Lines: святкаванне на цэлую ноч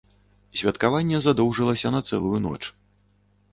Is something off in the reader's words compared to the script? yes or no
yes